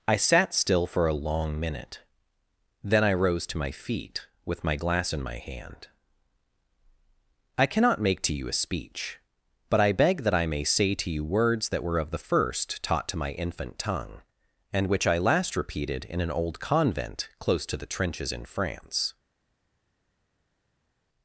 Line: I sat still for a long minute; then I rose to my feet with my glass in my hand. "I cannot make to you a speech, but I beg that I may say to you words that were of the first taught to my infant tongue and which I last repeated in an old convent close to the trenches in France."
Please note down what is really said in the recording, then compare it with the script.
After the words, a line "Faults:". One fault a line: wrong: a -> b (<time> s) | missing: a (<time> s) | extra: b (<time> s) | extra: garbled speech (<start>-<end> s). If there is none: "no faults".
I sat still for a long minute; then I rose to my feet with my glass in my hand. "I cannot make to you a speech, but I beg that I may say to you words that were of the first taught to my infant tongue and which I last repeated in an old convent close to the trenches in France."
Faults:
no faults